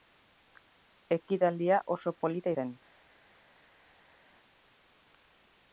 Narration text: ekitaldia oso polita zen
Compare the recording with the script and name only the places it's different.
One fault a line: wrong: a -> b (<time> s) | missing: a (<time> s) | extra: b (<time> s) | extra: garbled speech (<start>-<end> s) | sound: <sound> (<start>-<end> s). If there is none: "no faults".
no faults